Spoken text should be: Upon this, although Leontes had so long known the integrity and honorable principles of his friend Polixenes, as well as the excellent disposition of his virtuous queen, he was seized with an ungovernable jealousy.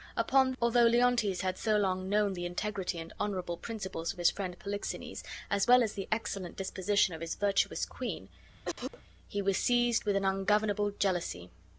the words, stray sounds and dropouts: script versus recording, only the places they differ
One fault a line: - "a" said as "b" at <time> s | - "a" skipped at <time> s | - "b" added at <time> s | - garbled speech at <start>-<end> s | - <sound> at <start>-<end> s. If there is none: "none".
- "this" skipped at 0.5 s
- cough at 8.6-9.0 s